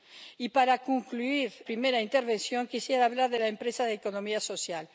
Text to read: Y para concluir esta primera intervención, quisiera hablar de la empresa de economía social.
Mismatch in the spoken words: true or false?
true